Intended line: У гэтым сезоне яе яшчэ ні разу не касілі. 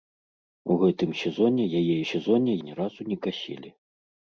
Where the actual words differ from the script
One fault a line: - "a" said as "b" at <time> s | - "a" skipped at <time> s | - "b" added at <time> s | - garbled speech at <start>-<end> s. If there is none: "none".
- "яшчэ" said as "сезоне" at 2.1 s